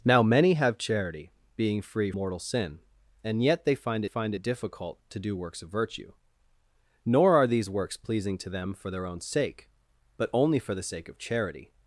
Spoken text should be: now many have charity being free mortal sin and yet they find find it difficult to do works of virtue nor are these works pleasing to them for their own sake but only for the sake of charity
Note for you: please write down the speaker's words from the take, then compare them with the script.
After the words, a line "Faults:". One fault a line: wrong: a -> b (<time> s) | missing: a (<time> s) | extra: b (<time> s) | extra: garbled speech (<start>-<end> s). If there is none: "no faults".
now many have charity being free mortal sin and yet they find find it difficult to do works of virtue nor are these works pleasing to them for their own sake but only for the sake of charity
Faults:
no faults